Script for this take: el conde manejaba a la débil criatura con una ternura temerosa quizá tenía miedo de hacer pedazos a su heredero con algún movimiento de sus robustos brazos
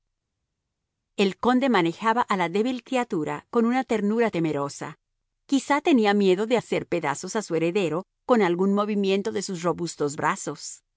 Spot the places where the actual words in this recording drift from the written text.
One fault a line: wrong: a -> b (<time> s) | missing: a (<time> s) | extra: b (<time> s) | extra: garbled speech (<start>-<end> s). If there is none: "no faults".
no faults